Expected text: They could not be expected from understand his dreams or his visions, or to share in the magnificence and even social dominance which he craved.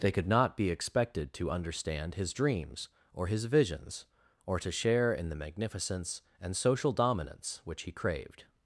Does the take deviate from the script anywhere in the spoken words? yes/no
yes